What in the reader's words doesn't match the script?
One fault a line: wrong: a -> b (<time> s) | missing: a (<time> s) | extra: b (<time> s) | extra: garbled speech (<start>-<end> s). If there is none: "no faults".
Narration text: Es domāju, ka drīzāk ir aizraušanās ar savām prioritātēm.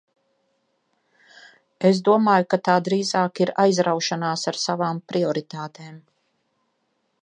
extra: tā (2.7 s)